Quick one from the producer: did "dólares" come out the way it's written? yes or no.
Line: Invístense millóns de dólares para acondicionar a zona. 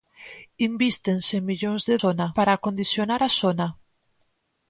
no